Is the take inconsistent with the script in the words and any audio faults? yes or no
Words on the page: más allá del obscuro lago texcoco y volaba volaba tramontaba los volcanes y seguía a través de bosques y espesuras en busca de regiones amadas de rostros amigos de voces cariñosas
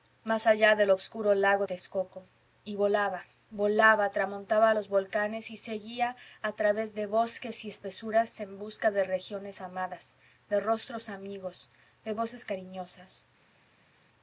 no